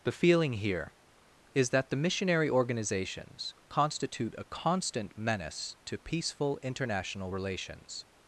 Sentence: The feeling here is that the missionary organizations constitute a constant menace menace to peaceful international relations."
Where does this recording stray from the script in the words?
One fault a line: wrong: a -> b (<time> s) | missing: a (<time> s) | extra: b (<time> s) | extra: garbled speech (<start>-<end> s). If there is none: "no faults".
missing: menace (5.8 s)